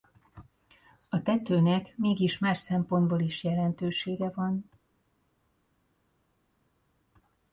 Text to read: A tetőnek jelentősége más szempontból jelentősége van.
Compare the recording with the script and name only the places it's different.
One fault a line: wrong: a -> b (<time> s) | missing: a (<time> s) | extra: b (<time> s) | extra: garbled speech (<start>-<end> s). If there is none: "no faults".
wrong: jelentősége -> mégis (2.0 s)
extra: is (3.2 s)